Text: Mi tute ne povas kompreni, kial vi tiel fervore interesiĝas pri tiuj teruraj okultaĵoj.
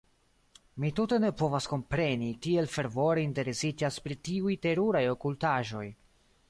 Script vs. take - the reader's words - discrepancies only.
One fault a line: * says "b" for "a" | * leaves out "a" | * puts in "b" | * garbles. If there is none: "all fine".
* leaves out "kial vi"